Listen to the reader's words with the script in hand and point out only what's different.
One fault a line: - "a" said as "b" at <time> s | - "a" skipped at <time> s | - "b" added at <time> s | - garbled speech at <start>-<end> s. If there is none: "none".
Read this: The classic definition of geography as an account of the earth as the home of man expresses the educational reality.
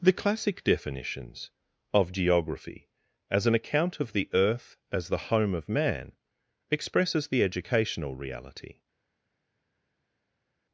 - "definition" said as "definitions" at 0.6 s